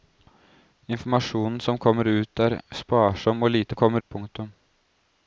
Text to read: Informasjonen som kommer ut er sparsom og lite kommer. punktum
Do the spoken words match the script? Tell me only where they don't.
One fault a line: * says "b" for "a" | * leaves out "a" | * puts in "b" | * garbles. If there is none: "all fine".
all fine